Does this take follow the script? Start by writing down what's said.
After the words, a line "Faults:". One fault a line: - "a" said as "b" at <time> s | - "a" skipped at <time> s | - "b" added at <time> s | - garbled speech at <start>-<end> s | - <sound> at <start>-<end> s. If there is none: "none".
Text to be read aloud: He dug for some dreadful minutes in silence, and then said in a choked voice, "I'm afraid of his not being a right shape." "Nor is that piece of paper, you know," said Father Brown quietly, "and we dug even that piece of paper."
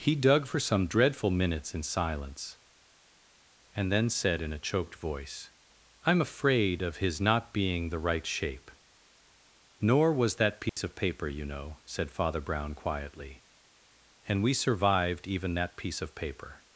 He dug for some dreadful minutes in silence, and then said in a choked voice, "I'm afraid of his not being the right shape." "Nor was that piece of paper, you know," said Father Brown quietly, "and we survived even that piece of paper."
Faults:
- "a" said as "the" at 7.9 s
- "is" said as "was" at 10.1 s
- dropout at 10.7-10.8 s
- "dug" said as "survived" at 14.6 s